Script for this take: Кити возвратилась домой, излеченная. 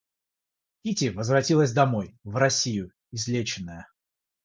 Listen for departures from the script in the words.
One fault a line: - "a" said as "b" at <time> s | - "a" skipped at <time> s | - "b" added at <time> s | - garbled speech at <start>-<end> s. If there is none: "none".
- "в Россию" added at 2.2 s